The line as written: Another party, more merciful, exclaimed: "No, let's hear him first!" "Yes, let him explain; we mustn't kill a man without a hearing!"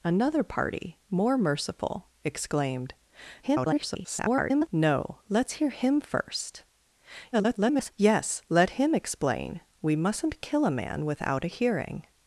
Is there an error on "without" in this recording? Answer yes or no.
no